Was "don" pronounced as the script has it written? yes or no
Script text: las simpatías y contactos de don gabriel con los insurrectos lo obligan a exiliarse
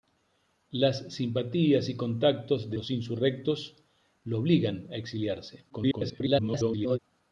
no